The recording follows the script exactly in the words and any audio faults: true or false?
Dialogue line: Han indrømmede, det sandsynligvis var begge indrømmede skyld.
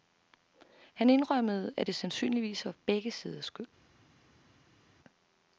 false